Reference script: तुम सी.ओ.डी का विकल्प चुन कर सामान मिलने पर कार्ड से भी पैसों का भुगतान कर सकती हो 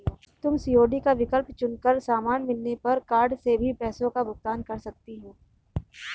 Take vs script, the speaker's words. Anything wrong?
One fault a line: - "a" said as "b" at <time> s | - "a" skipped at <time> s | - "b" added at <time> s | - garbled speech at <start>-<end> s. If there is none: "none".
none